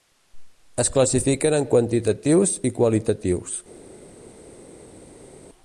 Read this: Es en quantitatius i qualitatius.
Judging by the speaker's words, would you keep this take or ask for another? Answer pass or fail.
fail